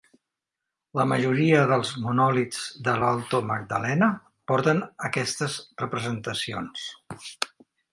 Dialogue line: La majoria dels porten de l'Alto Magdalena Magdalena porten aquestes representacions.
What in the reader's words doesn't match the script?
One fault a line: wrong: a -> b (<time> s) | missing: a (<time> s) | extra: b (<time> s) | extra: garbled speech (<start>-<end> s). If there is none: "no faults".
wrong: porten -> monòlits (2.1 s)
missing: Magdalena (4.1 s)